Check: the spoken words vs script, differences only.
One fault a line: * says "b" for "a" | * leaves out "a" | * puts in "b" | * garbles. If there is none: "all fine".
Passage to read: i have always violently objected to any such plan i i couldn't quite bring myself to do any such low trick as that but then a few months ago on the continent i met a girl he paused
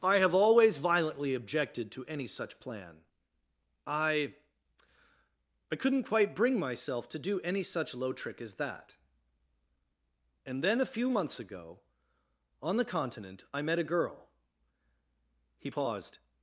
* says "and" for "but"